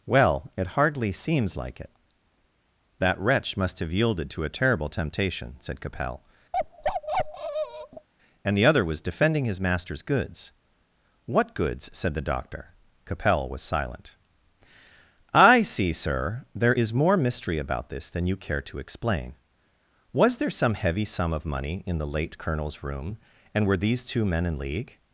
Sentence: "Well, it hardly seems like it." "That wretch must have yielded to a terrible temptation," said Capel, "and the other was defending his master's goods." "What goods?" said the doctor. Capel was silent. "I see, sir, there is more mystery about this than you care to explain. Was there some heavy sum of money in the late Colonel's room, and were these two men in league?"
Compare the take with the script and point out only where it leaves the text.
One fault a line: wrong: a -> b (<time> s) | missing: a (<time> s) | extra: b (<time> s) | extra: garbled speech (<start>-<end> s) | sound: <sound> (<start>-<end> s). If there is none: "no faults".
sound: bark (6.5-8.1 s)